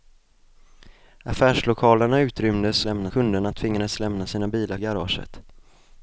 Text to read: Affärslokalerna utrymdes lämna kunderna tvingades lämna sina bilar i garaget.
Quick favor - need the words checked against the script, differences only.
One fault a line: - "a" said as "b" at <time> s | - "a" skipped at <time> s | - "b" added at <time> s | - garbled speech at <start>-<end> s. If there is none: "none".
none